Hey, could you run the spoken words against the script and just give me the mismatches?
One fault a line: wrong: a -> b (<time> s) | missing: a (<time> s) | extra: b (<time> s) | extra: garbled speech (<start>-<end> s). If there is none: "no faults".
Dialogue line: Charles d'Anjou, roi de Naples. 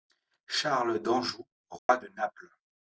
no faults